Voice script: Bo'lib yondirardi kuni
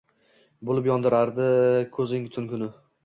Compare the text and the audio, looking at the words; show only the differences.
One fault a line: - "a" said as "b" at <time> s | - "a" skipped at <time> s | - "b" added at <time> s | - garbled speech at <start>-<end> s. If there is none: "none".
- "ko'zing tun" added at 2.0 s